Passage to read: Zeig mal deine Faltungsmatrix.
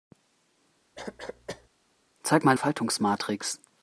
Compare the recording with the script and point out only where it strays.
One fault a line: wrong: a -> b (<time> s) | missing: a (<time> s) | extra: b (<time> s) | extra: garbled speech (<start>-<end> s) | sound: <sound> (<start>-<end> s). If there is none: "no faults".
sound: cough (1.0-1.7 s)
missing: deine (2.6 s)